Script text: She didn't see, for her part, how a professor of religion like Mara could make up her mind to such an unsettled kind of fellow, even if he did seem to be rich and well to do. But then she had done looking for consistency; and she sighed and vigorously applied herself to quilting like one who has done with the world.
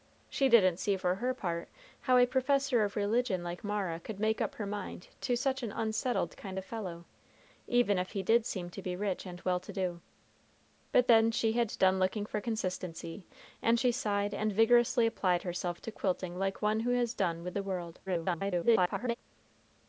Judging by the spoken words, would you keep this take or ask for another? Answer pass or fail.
fail